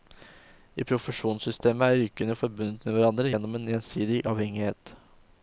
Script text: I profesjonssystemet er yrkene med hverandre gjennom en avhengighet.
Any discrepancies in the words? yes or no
yes